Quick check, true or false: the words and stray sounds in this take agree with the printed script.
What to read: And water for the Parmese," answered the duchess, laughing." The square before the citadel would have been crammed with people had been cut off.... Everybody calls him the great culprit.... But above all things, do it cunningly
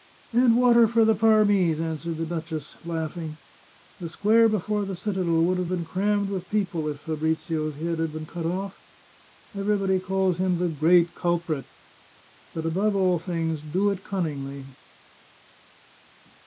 false